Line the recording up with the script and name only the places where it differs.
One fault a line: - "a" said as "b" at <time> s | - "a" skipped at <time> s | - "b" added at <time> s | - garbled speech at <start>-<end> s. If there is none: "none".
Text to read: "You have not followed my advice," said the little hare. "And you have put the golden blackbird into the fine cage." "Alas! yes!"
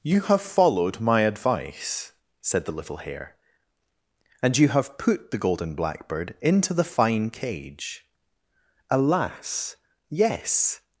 - "not" skipped at 0.4 s